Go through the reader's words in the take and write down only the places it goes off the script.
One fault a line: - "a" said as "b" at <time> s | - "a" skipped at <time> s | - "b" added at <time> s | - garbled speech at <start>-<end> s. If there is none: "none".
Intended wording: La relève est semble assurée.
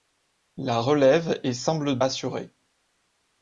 none